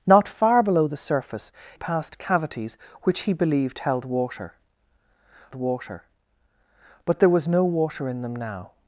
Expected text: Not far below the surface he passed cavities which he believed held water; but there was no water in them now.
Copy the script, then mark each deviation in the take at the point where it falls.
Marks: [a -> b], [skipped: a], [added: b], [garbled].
Not far below the surface [skipped: he] passed cavities which he believed held water; [added: water] but there was no water in them now.